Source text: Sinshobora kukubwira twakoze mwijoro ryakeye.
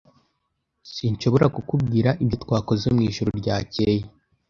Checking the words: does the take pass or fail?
fail